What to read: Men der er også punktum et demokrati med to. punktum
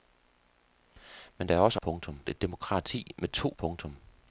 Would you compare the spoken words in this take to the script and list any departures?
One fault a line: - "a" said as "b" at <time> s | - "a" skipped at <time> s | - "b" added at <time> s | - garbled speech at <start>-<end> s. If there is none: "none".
none